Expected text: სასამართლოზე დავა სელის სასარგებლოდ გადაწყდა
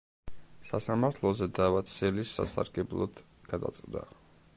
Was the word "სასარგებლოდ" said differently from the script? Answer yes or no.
no